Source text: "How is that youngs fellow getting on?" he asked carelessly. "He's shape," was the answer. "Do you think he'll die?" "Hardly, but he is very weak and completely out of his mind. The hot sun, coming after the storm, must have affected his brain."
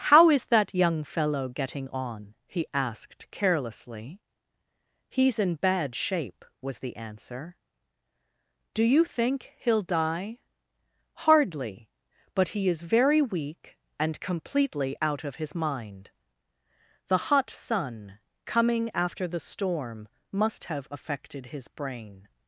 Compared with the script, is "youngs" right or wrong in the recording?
wrong